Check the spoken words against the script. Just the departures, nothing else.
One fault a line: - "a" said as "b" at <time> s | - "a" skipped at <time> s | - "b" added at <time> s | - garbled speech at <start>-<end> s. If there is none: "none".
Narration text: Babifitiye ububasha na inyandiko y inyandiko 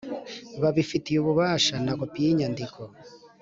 - "inyandiko" said as "kopi" at 2.0 s